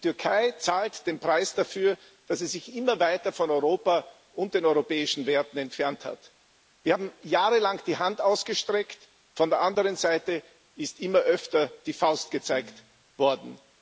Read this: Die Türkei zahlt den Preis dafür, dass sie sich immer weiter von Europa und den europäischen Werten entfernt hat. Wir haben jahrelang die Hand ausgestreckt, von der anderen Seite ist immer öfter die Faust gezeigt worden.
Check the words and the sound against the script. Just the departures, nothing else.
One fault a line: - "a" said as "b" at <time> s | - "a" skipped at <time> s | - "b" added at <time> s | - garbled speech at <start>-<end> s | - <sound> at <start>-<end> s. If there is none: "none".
none